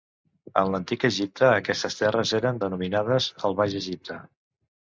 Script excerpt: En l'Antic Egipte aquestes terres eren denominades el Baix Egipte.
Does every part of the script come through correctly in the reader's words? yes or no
yes